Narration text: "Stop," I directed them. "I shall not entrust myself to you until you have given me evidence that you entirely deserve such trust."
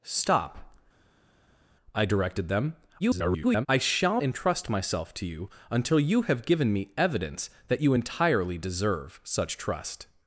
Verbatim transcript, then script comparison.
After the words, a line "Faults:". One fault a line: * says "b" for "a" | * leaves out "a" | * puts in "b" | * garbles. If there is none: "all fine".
"Stop," I directed them. [garbled] "I shall entrust myself to you until you have given me evidence that you entirely deserve such trust."
Faults:
* garbles
* leaves out "not"